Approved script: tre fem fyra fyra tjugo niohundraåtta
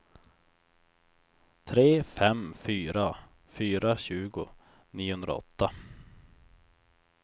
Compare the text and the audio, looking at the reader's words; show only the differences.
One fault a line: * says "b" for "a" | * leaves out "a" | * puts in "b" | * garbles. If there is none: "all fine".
all fine